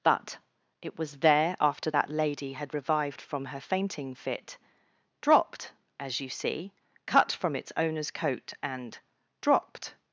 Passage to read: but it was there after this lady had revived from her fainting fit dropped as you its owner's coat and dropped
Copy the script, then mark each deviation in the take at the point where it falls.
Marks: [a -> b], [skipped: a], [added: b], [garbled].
but it was there after [this -> that] lady had revived from her fainting fit dropped as you [added: see cut from] its owner's coat and dropped